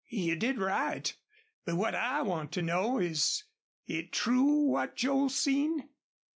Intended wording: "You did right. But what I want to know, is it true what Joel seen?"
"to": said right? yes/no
yes